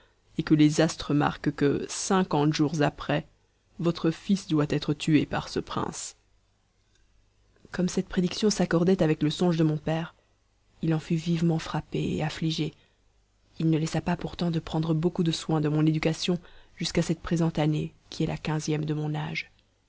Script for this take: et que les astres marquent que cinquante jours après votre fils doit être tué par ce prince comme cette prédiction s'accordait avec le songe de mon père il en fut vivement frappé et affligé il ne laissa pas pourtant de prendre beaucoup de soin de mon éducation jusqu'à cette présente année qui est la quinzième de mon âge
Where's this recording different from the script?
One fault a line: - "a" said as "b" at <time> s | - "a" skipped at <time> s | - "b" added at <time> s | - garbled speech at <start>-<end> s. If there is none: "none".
none